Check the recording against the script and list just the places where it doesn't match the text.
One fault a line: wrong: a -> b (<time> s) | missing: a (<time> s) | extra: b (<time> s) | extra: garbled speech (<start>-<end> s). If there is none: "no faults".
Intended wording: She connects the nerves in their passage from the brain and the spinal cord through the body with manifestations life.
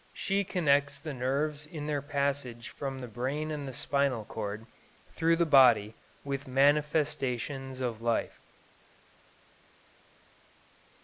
extra: of (7.8 s)